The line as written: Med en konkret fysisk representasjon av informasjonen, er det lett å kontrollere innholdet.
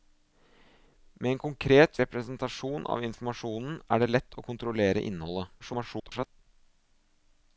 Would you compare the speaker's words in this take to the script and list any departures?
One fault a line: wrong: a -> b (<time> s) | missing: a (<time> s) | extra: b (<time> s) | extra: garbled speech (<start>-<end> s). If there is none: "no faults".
missing: fysisk (2.0 s)
extra: garbled speech (5.6-6.3 s)